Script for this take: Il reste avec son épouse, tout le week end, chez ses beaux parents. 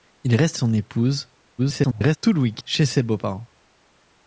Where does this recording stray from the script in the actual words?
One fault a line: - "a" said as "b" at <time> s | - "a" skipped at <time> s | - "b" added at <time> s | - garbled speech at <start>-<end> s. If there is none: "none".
- "avec" skipped at 0.6 s
- garbled speech at 1.6-2.2 s
- "end" skipped at 2.6 s